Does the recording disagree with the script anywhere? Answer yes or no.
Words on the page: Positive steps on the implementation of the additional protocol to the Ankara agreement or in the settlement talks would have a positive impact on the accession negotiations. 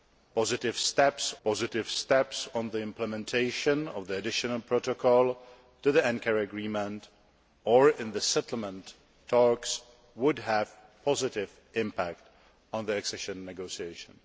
yes